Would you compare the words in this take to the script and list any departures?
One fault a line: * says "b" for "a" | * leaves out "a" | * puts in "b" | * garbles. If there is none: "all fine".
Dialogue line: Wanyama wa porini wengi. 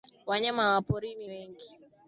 all fine